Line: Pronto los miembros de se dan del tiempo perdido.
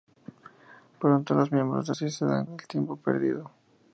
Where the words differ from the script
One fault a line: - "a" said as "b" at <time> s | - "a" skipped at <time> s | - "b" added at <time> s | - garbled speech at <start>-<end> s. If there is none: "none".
none